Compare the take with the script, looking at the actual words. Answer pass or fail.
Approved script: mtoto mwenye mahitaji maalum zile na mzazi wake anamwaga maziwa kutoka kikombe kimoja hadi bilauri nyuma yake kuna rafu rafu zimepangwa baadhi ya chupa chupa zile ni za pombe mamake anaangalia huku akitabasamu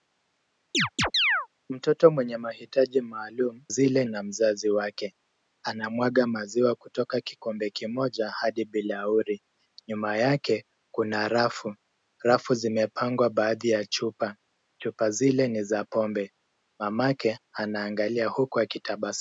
pass